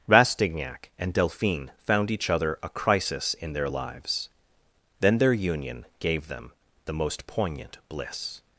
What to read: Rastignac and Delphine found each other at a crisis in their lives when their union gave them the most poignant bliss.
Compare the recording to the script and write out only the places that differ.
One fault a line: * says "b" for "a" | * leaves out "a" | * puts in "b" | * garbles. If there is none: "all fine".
* leaves out "at"
* says "then" for "when"